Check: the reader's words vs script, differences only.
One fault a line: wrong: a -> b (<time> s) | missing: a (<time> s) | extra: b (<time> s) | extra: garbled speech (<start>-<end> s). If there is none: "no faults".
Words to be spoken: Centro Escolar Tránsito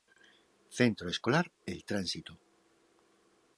extra: El (1.7 s)